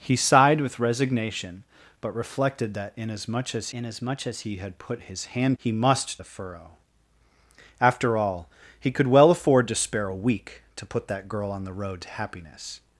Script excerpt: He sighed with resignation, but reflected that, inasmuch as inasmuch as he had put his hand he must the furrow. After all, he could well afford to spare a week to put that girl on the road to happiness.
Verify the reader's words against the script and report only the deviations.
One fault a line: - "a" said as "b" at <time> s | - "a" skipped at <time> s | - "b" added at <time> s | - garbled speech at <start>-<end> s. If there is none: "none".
none